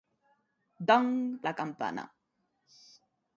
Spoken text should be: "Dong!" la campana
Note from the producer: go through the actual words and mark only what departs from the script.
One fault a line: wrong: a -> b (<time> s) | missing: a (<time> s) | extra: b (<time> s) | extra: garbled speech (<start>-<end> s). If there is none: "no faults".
no faults